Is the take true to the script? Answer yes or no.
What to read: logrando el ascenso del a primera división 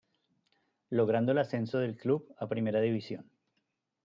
no